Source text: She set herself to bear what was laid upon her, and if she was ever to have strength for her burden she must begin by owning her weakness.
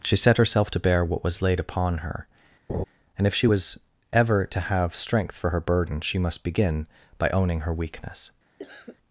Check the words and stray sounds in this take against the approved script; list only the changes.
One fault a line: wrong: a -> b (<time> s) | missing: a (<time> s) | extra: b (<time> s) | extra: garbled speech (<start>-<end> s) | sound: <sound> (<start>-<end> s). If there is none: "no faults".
sound: laugh (2.7-2.8 s)
sound: cough (8.6-9.0 s)